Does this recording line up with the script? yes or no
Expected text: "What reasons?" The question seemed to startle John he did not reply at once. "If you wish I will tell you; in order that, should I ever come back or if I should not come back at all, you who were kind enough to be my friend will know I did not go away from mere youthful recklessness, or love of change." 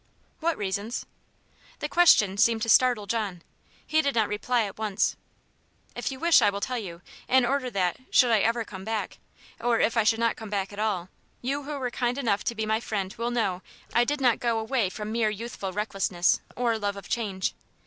yes